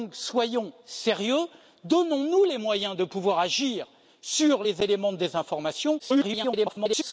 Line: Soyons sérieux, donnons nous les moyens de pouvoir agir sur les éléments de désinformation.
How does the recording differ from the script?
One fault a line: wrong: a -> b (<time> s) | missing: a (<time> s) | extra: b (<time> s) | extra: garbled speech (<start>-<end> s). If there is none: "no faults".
extra: garbled speech (6.0-7.1 s)